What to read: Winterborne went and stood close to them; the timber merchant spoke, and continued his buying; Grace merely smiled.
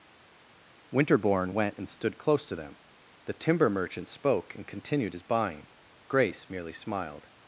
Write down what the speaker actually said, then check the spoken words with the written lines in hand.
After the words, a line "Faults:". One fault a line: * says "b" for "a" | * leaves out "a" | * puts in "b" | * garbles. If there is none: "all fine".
Winterborne went and stood close to them; the timber merchant spoke, and continued his buying; Grace merely smiled.
Faults:
all fine